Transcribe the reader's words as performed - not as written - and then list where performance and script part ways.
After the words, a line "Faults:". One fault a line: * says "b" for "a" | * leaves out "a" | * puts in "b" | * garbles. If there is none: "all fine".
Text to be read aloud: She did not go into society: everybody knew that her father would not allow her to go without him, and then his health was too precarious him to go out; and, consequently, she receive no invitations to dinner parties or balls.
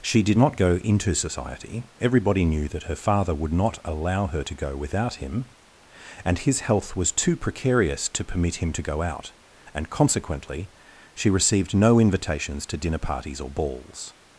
She did not go into society: everybody knew that her father would not allow her to go without him, and his health was too precarious to permit him to go out; and, consequently, she received no invitations to dinner parties or balls.
Faults:
* leaves out "then"
* puts in "to permit"
* says "received" for "receive"